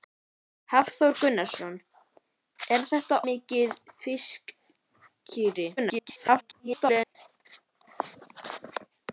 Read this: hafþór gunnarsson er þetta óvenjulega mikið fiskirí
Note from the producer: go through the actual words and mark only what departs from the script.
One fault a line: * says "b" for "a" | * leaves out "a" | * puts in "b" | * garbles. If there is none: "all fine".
* leaves out "óvenjulega"
* garbles